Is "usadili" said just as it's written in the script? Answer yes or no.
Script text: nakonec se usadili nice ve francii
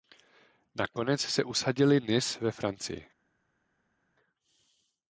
yes